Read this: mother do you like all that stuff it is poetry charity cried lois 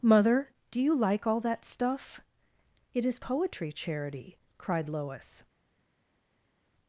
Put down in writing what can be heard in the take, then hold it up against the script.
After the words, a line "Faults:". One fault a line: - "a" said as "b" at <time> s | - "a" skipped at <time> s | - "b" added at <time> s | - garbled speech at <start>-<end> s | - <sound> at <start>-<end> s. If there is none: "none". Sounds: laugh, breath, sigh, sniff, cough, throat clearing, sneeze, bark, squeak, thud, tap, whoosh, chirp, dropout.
mother do you like all that stuff it is poetry charity cried lois
Faults:
none